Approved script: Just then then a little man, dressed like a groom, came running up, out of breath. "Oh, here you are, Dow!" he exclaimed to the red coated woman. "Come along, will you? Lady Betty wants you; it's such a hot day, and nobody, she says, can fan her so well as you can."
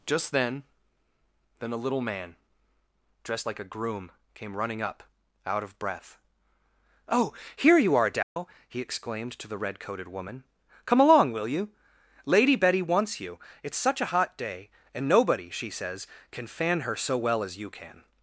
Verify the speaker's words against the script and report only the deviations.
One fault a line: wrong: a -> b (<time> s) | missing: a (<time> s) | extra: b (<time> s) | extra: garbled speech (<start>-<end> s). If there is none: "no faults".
no faults